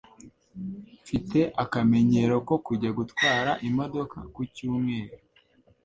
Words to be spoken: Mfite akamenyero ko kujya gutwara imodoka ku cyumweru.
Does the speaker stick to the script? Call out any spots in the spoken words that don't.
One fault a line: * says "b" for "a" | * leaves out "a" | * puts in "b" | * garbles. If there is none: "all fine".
all fine